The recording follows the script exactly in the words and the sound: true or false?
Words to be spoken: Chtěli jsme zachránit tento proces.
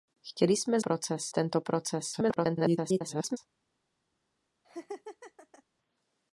false